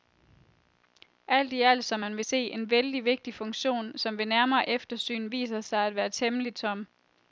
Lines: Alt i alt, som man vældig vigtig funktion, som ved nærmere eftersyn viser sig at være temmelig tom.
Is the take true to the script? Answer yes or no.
no